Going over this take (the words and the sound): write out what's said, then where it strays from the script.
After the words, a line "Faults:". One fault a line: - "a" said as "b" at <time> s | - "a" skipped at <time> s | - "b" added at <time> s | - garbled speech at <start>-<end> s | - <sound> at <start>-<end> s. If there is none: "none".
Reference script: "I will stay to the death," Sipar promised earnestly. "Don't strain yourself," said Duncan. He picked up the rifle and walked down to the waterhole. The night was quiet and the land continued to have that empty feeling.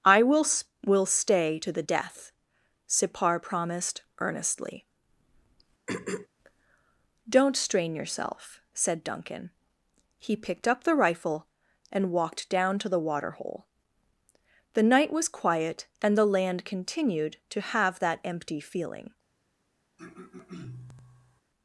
"I will will stay to the death," Sipar promised earnestly. "Don't strain yourself," said Duncan. He picked up the rifle and walked down to the waterhole. The night was quiet and the land continued to have that empty feeling.
Faults:
- "will" added at 0.8 s
- throat clearing at 5.9-6.3 s
- throat clearing at 20.0-21.4 s